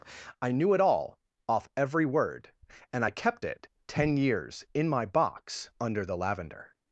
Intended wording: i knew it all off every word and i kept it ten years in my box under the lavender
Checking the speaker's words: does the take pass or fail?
pass